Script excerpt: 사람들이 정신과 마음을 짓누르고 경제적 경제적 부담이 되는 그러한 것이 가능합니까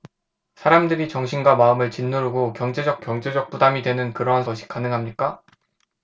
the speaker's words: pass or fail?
pass